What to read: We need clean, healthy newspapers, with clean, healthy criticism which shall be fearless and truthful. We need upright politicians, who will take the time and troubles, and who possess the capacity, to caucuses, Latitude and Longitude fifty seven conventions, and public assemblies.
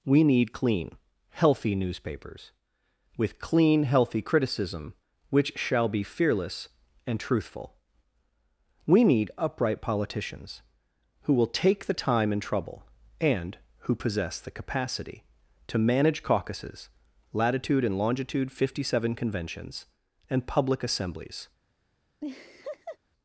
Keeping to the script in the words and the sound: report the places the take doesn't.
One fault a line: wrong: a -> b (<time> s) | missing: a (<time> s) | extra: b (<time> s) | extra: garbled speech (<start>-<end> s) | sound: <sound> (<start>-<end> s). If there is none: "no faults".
wrong: troubles -> trouble (12.4 s)
extra: manage (15.8 s)
sound: laugh (22.2-23.0 s)